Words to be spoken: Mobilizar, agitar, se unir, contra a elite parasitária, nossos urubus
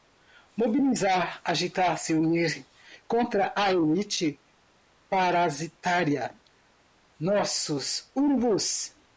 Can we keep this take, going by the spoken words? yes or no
yes